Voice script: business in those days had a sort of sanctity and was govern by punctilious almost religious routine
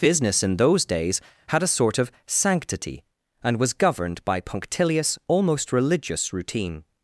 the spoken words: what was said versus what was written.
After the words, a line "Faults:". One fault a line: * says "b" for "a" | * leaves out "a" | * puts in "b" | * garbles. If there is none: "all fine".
business in those days had a sort of sanctity and was governed by punctilious almost religious routine
Faults:
* says "governed" for "govern"